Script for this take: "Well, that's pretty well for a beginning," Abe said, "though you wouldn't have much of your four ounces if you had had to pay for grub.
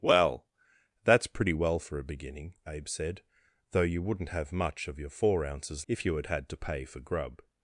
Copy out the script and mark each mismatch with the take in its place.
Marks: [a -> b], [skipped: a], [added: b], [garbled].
"Well, that's pretty well for a beginning," Abe said, "though you wouldn't have much of your four ounces if you had had to pay for grub.